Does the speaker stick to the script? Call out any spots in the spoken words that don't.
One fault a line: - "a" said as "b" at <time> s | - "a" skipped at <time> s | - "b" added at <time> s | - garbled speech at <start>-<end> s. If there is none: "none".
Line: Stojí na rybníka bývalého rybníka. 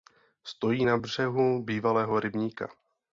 - "rybníka" said as "břehu" at 1.0 s